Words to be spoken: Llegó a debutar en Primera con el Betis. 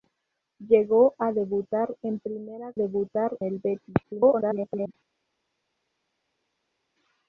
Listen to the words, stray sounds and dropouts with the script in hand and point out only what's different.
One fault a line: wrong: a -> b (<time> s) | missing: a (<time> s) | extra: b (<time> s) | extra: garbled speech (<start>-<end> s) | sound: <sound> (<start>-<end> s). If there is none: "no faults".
wrong: con -> debutar (2.7 s)
extra: garbled speech (4.0-4.9 s)